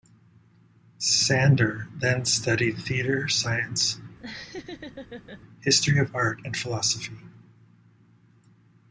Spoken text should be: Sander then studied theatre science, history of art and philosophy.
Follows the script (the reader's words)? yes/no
yes